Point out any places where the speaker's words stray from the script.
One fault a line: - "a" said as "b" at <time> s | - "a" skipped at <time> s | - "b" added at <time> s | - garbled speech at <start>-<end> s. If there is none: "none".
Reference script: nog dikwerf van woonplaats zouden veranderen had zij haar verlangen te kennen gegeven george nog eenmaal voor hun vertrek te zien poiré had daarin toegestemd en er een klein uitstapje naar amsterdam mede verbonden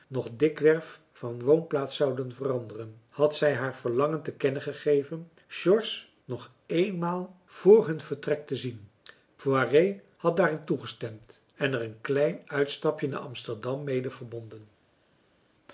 none